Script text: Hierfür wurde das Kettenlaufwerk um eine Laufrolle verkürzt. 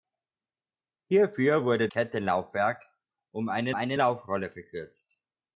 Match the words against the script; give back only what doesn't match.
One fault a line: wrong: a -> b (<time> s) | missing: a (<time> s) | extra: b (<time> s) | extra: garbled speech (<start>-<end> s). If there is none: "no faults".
missing: das (1.9 s)
extra: eine (3.7 s)